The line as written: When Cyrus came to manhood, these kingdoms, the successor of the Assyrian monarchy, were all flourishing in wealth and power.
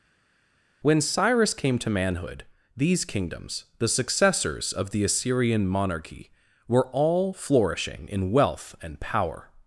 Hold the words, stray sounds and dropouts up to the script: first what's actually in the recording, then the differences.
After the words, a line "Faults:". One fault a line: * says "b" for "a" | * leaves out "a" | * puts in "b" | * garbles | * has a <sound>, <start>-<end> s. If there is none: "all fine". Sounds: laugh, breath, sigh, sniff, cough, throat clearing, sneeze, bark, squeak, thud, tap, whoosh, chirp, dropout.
When Cyrus came to manhood, these kingdoms, the successors of the Assyrian monarchy, were all flourishing in wealth and power.
Faults:
* says "successors" for "successor"